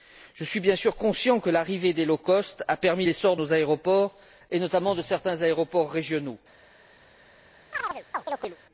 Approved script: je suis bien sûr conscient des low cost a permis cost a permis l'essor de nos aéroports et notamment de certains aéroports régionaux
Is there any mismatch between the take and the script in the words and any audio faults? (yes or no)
yes